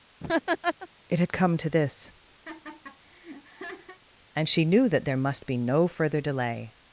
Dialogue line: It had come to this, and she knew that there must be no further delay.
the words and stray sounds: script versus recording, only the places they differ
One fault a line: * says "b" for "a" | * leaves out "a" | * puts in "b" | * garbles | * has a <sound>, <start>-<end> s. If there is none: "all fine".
* has a laugh, 0.2-0.9 s
* has a laugh, 2.4-4.0 s